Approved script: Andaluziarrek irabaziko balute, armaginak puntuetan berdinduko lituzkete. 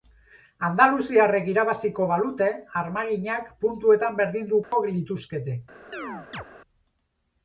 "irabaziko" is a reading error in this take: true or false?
false